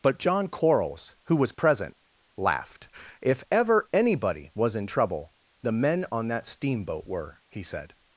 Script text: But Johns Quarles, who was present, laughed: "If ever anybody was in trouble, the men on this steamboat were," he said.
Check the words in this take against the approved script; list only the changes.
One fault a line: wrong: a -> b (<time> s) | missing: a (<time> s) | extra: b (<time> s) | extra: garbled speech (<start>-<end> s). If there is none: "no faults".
wrong: Johns -> John (0.2 s)
wrong: this -> that (6.3 s)